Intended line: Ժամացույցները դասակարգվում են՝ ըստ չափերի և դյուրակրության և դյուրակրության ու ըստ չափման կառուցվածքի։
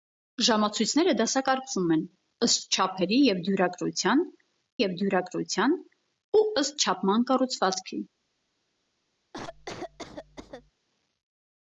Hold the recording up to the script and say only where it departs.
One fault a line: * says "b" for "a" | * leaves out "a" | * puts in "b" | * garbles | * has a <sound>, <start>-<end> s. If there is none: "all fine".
* has a cough, 9.3-10.7 s